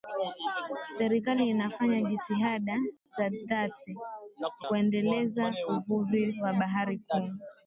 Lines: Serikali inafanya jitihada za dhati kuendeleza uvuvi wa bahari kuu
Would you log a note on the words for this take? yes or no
no